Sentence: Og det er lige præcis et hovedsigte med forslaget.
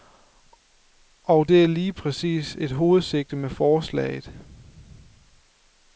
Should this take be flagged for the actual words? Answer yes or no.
no